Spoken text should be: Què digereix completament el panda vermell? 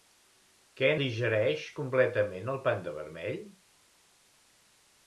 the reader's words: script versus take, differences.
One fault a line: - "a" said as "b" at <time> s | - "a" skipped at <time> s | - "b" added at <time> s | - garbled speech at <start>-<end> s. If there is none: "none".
none